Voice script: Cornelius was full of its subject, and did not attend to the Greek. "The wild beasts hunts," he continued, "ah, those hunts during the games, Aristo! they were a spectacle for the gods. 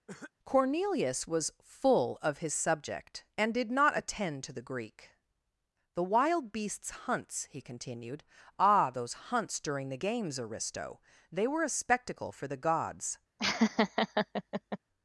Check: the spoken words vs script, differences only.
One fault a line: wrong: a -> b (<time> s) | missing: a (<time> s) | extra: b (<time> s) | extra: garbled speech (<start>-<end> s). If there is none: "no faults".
wrong: its -> his (2.4 s)